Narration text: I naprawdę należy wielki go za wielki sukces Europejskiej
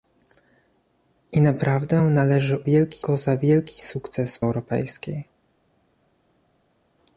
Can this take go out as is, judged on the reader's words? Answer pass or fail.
pass